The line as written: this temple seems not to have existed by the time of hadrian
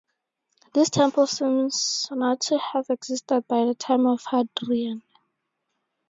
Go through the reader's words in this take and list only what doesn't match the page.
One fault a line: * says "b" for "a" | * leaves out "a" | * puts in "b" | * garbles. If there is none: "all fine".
all fine